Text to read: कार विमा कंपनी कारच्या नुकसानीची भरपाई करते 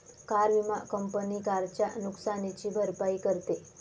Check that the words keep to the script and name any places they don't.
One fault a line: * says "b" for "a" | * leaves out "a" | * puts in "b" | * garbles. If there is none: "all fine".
all fine